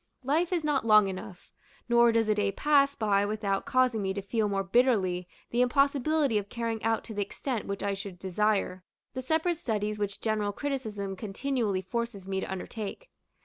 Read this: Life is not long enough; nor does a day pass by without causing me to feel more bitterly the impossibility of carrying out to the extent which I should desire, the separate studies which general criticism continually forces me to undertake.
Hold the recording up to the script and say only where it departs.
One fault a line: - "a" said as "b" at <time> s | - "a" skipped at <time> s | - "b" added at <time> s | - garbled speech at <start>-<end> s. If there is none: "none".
none